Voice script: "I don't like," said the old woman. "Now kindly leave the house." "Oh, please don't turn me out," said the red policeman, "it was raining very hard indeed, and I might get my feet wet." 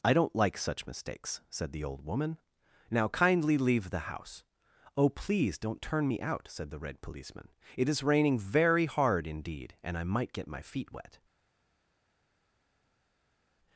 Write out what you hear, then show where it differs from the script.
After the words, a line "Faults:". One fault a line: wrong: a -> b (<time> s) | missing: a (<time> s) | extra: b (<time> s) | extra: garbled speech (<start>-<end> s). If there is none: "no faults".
"I don't like such mistakes," said the old woman. "Now kindly leave the house." "Oh, please don't turn me out," said the red policeman, "it is raining very hard indeed, and I might get my feet wet."
Faults:
extra: such mistakes (0.6 s)
wrong: was -> is (7.9 s)